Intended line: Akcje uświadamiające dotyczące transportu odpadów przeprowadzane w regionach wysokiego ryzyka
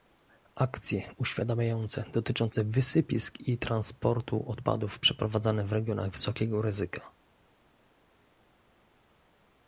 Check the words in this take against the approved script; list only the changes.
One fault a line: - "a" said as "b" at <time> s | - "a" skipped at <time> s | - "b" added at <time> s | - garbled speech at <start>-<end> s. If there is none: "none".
- "wysypisk i" added at 2.6 s